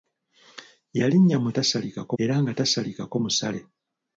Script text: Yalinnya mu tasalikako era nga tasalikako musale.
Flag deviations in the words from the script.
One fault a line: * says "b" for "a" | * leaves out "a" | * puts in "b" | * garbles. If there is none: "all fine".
all fine